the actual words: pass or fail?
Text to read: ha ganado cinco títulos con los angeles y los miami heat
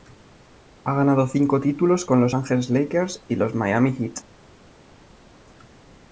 fail